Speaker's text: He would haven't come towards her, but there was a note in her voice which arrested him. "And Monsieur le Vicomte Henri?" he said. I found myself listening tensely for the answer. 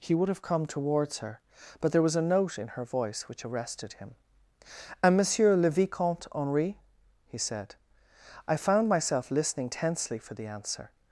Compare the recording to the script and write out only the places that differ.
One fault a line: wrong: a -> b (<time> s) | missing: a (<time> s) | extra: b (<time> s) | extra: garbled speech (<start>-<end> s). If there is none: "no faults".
wrong: haven't -> have (0.3 s)